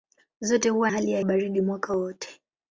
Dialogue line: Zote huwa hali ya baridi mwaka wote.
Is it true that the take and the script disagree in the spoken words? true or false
false